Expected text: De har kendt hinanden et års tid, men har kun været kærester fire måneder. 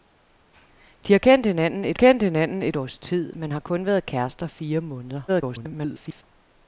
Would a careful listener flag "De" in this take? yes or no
no